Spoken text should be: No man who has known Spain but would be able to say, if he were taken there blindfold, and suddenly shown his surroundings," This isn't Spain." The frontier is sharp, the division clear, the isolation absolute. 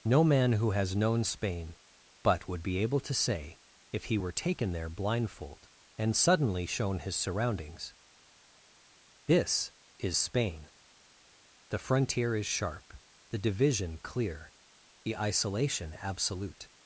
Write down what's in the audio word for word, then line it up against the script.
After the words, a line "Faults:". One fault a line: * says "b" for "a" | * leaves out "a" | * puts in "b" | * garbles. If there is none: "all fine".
No man who has known Spain but would be able to say, if he were taken there blindfold, and suddenly shown his surroundings," This is Spain." The frontier is sharp, the division clear, the isolation absolute.
Faults:
* says "is" for "isn't"